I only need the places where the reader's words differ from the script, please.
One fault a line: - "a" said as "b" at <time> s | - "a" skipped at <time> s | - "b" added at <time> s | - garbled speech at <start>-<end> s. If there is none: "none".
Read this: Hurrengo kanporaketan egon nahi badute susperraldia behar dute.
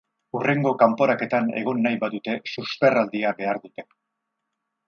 none